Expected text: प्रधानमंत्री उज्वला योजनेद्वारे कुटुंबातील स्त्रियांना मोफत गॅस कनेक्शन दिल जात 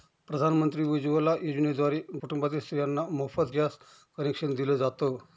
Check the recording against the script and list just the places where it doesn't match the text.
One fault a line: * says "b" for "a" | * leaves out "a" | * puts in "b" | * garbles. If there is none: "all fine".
all fine